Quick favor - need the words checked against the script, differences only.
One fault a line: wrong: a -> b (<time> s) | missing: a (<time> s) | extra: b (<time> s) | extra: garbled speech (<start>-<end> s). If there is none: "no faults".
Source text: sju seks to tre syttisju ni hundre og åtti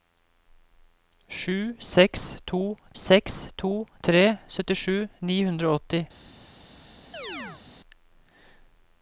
extra: seks to (3.0 s)